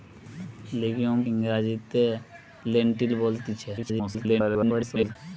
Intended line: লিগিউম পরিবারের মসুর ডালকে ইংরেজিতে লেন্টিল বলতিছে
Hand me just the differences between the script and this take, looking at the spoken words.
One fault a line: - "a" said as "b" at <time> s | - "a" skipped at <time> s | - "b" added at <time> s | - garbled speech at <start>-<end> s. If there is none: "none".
- "পরিবারের মসুর ডালকে" skipped at 1.2 s
- garbled speech at 3.8-5.2 s